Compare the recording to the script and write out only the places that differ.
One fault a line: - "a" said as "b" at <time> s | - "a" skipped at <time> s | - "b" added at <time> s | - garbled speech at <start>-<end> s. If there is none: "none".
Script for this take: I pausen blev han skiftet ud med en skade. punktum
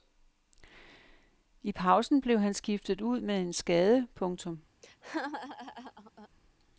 none